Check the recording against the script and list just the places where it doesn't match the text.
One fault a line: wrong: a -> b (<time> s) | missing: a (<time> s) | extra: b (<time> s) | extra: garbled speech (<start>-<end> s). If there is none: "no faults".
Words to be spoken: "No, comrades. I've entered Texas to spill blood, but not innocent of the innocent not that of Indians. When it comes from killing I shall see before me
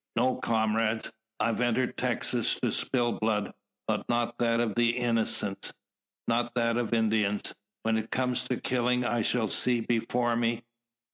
wrong: innocent -> that (4.4 s)
wrong: from -> to (8.5 s)